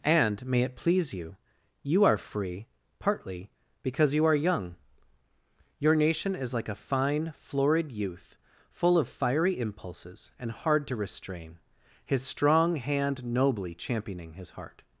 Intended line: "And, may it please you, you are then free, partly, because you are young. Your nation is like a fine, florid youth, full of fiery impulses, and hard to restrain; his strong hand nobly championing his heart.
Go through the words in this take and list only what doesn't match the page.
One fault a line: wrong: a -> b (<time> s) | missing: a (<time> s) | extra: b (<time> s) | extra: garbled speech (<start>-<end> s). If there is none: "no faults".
missing: then (2.2 s)